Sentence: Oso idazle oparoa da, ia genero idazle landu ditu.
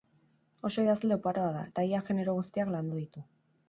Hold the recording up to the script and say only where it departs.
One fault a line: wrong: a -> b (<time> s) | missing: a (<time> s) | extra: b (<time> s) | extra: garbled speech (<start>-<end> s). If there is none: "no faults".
extra: eta (1.7 s)
wrong: idazle -> guztiak (2.4 s)